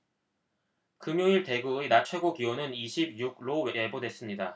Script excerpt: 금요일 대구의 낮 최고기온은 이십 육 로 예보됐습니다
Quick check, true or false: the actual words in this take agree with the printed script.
true